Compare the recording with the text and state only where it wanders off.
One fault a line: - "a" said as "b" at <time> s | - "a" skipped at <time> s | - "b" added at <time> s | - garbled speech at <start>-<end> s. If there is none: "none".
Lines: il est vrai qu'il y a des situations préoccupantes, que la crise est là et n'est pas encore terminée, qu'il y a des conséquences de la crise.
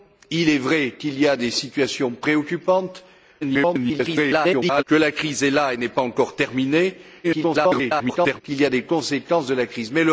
- garbled speech at 3.4-4.8 s
- garbled speech at 7.2-8.4 s